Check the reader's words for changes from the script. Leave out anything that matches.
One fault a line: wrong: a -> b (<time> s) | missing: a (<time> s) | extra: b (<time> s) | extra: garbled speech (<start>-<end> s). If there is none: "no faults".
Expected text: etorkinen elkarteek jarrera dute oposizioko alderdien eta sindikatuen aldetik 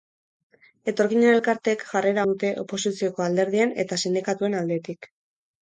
no faults